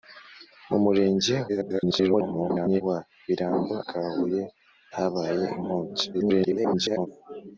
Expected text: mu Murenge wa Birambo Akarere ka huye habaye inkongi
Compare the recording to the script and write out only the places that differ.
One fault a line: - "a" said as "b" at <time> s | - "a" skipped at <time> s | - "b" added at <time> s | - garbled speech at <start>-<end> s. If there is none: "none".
- garbled speech at 1.5-2.8 s
- "Akarere" skipped at 3.7 s
- garbled speech at 6.1-7.1 s